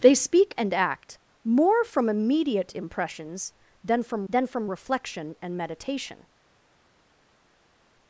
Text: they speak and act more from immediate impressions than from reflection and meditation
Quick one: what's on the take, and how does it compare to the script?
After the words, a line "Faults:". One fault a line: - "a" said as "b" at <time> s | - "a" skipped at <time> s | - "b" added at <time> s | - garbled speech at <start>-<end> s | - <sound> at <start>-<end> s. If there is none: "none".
they speak and act more from immediate impressions than from than from reflection and meditation
Faults:
- "than from" added at 4.3 s